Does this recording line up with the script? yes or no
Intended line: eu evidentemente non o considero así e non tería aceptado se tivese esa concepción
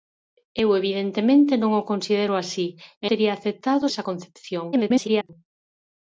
no